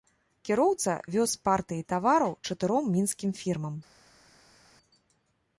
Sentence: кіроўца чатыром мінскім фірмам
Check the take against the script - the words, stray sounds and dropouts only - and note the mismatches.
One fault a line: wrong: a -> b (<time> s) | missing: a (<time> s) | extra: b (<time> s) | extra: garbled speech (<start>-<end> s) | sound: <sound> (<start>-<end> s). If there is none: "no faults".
extra: вёз партыі тавараў (1.2 s)